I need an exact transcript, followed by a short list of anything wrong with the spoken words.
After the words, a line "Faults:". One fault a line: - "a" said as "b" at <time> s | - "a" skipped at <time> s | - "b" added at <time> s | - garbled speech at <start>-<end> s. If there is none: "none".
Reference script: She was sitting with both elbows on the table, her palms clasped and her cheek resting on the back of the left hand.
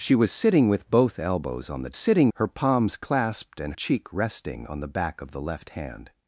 She was sitting with both elbows on the sitting, her palms clasped and cheek resting on the back of the left hand.
Faults:
- "table" said as "sitting" at 1.9 s
- "her" skipped at 3.8 s